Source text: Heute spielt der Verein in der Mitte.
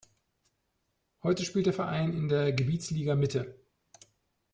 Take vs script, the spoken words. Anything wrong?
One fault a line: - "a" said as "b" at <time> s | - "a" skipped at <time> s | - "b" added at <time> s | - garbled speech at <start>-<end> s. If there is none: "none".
- "Gebietsliga" added at 2.5 s